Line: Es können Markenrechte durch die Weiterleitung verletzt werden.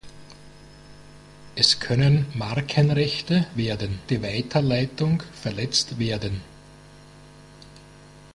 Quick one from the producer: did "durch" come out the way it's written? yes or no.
no